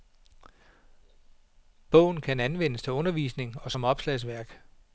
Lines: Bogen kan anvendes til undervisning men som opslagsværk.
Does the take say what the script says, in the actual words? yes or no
no